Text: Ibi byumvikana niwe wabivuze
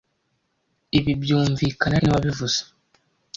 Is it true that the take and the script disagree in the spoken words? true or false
false